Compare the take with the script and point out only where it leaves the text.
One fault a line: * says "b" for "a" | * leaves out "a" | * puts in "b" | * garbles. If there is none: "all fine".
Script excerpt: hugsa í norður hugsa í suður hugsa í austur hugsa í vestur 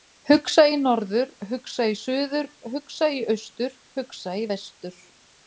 all fine